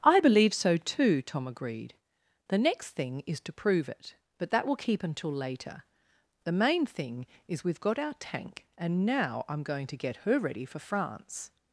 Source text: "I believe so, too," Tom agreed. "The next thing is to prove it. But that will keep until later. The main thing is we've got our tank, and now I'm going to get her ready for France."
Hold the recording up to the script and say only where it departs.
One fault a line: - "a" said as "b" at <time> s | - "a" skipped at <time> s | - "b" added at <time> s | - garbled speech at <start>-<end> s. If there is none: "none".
none